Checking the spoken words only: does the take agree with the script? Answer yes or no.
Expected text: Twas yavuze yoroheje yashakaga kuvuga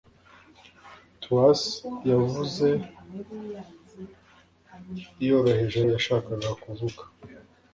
yes